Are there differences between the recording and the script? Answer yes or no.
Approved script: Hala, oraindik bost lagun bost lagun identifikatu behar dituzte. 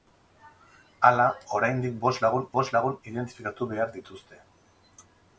no